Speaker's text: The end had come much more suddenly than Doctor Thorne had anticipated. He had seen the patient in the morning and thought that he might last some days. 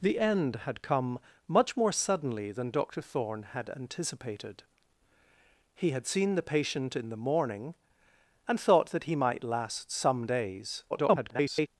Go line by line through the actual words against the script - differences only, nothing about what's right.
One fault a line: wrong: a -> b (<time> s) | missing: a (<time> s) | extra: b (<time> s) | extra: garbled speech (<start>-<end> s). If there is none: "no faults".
extra: garbled speech (10.9-11.7 s)